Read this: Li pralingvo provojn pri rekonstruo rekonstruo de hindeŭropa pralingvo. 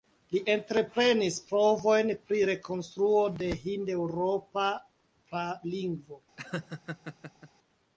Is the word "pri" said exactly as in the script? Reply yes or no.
yes